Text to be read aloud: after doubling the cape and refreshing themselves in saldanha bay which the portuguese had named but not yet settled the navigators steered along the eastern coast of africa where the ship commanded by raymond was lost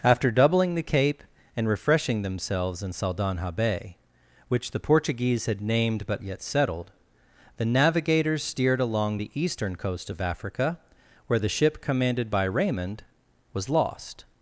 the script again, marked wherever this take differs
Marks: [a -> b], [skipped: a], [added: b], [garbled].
after doubling the cape and refreshing themselves in saldanha bay which the portuguese had named but [skipped: not] yet settled the navigators steered along the eastern coast of africa where the ship commanded by raymond was lost